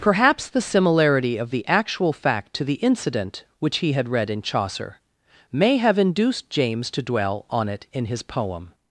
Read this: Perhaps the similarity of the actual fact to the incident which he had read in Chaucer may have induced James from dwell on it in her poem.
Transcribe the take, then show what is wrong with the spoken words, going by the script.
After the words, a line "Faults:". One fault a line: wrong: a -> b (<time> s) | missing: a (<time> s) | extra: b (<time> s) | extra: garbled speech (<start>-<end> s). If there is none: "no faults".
Perhaps the similarity of the actual fact to the incident which he had read in Chaucer may have induced James to dwell on it in his poem.
Faults:
wrong: from -> to (6.9 s)
wrong: her -> his (8.1 s)